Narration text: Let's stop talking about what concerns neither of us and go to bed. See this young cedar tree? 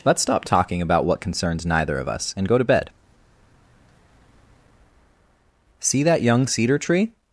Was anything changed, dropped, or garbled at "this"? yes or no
yes